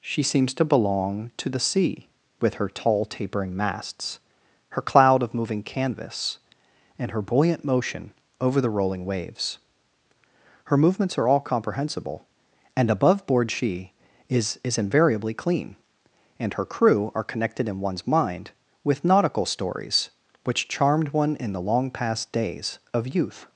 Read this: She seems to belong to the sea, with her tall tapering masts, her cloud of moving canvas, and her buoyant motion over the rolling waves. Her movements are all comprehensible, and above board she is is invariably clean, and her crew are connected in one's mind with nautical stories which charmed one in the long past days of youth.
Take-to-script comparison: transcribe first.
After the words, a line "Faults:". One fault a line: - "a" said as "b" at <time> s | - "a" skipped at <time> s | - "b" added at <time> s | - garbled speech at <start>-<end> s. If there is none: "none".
She seems to belong to the sea, with her tall tapering masts, her cloud of moving canvas, and her buoyant motion over the rolling waves. Her movements are all comprehensible, and above board she is is invariably clean, and her crew are connected in one's mind with nautical stories which charmed one in the long past days of youth.
Faults:
none